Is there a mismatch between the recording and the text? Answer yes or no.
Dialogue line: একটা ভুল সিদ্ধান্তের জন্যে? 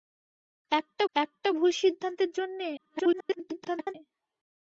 yes